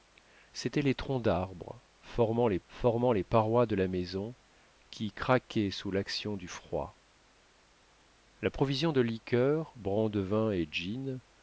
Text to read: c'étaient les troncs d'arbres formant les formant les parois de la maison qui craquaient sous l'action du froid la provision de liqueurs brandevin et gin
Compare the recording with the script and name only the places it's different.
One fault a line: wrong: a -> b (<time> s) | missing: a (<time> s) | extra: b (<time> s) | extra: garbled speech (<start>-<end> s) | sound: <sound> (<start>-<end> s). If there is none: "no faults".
no faults